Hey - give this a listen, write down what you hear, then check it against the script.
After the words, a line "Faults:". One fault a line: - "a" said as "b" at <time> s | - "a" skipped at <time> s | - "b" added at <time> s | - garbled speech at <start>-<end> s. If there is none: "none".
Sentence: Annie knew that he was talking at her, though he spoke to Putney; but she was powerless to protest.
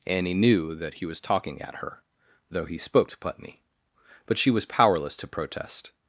Annie knew that he was talking at her, though he spoke to Putney; but she was powerless to protest.
Faults:
none